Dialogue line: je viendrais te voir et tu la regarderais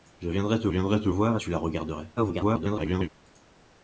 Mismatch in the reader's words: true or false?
true